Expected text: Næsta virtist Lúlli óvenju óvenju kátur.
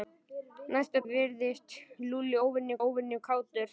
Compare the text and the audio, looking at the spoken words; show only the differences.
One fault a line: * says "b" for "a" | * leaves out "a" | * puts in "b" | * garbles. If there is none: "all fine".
all fine